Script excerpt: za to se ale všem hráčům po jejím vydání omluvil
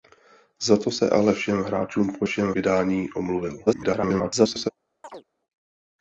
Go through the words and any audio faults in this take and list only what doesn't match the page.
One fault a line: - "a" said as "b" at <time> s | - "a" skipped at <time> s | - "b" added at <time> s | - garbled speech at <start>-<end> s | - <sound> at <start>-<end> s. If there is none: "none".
- "jejím" said as "všem" at 2.2 s
- garbled speech at 3.7-4.7 s
- chirp at 5.0-5.2 s